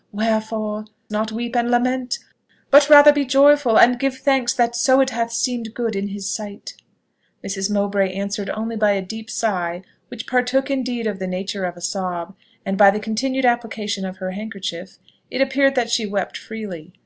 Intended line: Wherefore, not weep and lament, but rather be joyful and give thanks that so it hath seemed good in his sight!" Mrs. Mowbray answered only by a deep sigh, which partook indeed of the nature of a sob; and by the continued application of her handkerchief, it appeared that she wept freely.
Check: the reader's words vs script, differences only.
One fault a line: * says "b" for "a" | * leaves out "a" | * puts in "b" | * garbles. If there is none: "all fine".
all fine